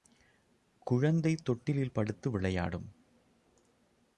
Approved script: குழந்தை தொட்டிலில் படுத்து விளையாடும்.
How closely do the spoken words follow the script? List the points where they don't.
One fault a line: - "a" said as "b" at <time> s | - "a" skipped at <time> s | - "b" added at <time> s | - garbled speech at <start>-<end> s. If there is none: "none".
none